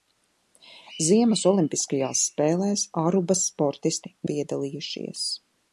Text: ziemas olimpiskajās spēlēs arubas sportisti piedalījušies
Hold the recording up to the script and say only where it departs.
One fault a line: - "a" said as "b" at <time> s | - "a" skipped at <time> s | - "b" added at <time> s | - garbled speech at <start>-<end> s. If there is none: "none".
none